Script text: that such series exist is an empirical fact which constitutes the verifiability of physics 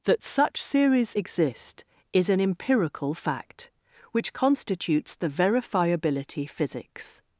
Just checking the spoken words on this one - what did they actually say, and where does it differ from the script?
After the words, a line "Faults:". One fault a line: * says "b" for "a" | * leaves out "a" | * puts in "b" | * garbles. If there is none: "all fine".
that such series exist is an empirical fact which constitutes the verifiability physics
Faults:
* leaves out "of"